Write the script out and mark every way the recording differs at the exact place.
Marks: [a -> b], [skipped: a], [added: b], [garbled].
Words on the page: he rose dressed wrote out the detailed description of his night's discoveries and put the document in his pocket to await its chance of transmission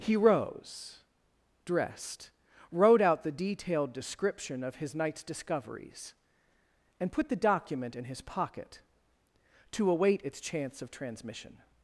he rose dressed wrote out the detailed description of his night's discoveries and put the document in his pocket to await its chance of transmission